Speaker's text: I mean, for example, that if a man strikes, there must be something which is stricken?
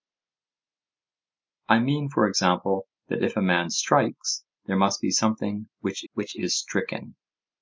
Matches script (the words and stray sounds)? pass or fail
fail